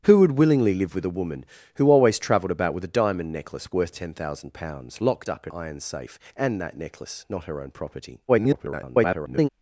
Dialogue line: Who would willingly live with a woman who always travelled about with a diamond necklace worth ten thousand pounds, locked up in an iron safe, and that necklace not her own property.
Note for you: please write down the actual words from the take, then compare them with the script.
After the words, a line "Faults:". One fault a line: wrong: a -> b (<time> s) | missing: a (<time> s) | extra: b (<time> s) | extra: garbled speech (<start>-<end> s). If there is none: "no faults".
Who would willingly live with a woman who always travelled about with a diamond necklace worth ten thousand pounds, locked up in iron safe, and that necklace not her own property. [garbled]
Faults:
missing: an (5.5 s)
extra: garbled speech (8.3-9.5 s)